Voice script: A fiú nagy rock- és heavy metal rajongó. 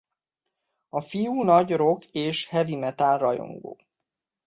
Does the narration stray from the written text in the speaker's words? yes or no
no